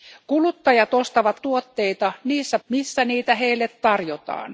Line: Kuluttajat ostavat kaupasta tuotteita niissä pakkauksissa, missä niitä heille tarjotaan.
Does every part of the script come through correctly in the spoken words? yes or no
no